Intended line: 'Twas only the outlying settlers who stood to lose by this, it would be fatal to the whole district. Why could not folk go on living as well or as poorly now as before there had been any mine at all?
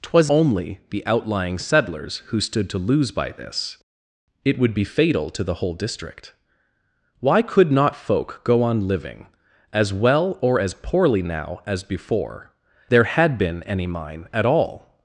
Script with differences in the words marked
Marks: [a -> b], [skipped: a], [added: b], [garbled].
'Twas only the outlying settlers who stood to lose by this, it would be fatal to the whole district. Why could not folk go on living as well or as poorly now as before there had been any mine at all?